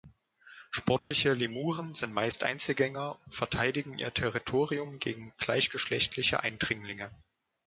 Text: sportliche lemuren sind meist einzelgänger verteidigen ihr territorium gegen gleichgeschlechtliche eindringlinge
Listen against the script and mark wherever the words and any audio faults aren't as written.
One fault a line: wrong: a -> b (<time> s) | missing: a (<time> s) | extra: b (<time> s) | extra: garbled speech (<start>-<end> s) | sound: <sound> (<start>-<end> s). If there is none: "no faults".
sound: dropout (1.0-1.1 s)
extra: und (3.2 s)